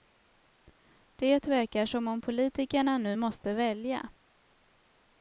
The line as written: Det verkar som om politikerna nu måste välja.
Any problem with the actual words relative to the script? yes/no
no